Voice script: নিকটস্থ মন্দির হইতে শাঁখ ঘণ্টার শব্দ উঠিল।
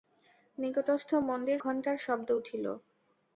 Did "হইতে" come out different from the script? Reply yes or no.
yes